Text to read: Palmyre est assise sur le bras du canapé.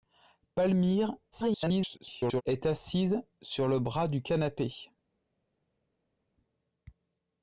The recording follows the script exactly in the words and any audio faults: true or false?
false